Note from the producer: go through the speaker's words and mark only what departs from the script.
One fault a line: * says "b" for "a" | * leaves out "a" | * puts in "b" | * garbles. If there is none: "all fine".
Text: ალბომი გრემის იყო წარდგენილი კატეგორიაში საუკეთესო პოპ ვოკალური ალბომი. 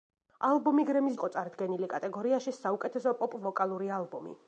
all fine